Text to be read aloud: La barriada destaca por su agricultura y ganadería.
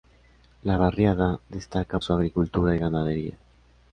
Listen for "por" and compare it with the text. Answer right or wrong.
wrong